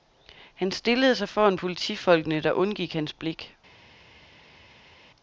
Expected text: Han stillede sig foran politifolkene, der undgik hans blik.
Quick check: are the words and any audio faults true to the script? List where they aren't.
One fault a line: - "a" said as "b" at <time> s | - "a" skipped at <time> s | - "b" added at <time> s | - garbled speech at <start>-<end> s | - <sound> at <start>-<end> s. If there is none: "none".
none